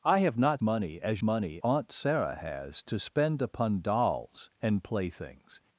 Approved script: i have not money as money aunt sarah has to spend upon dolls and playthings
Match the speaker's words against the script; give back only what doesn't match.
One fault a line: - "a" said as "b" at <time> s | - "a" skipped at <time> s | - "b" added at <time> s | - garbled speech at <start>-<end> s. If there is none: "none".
none